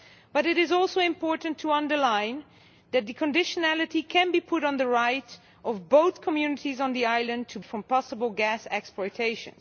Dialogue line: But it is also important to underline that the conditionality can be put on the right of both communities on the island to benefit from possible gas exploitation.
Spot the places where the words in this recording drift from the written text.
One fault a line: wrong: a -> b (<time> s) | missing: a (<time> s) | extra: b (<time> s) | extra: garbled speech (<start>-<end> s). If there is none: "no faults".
missing: benefit (7.6 s)